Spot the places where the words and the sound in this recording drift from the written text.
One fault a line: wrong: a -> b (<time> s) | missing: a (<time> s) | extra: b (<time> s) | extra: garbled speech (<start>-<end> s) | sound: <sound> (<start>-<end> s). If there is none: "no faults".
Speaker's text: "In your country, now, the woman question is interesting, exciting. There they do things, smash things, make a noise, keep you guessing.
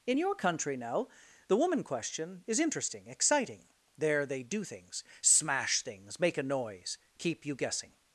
no faults